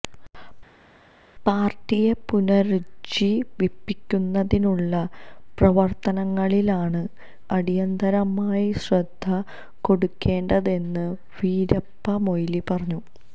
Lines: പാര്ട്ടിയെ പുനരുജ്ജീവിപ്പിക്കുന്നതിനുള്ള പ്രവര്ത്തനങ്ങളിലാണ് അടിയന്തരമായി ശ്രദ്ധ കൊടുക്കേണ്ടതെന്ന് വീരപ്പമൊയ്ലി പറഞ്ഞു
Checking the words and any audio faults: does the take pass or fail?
pass